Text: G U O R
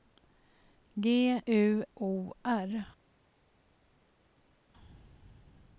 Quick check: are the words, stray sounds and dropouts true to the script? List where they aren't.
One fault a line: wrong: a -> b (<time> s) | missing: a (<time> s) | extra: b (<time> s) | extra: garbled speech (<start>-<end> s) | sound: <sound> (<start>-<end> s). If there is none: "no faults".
no faults